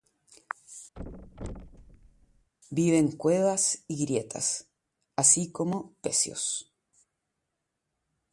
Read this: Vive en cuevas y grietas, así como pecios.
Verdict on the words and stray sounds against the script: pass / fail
fail